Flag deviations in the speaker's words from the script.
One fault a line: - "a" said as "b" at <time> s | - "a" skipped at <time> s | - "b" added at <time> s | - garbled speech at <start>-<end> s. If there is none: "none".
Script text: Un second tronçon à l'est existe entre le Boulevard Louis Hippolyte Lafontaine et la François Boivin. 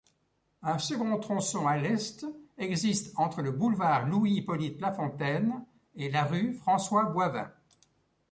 - "rue" added at 6.2 s